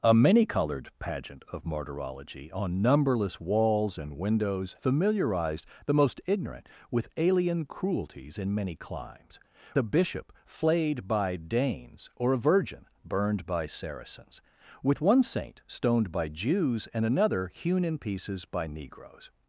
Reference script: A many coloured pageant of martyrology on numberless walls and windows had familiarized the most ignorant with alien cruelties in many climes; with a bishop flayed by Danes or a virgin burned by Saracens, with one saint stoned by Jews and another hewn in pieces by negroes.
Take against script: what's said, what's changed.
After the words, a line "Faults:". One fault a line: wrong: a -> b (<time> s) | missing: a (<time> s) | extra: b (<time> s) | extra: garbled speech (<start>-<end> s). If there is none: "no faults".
A many coloured pageant of martyrology on numberless walls and windows familiarized the most ignorant with alien cruelties in many climes; a bishop flayed by Danes or a virgin burned by Saracens, with one saint stoned by Jews and another hewn in pieces by negroes.
Faults:
missing: had (4.8 s)
missing: with (9.4 s)